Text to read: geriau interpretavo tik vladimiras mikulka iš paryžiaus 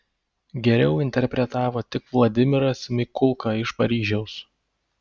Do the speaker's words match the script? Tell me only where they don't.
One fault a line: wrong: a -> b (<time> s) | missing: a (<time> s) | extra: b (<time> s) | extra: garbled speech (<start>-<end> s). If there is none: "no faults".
no faults